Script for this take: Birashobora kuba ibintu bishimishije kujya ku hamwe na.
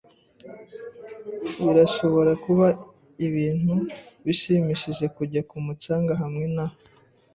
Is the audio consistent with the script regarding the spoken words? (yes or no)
no